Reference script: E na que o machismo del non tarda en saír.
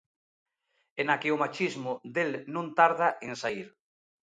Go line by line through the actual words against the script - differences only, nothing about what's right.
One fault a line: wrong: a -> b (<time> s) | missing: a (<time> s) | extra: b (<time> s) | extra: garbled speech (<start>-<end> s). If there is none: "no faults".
no faults